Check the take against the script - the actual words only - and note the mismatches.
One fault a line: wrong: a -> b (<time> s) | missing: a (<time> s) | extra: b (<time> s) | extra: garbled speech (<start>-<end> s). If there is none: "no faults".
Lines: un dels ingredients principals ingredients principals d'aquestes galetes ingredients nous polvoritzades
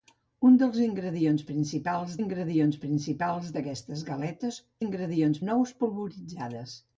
no faults